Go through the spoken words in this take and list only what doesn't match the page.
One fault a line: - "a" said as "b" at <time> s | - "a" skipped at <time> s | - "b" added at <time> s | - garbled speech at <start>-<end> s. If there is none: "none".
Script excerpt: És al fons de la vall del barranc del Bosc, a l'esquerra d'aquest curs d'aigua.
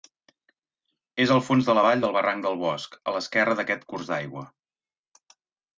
none